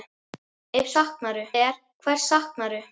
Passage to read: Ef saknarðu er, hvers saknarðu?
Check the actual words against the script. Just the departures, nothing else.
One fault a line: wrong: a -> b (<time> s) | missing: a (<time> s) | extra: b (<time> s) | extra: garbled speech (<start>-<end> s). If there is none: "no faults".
no faults